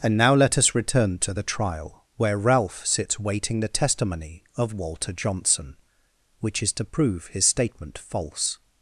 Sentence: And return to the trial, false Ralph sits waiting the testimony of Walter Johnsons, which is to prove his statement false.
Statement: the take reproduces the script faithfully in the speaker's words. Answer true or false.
false